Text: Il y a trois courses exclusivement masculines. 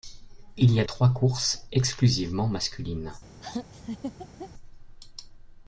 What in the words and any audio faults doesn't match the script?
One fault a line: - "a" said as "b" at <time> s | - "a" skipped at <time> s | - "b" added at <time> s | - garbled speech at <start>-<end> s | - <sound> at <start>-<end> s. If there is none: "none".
- laugh at 3.4-4.5 s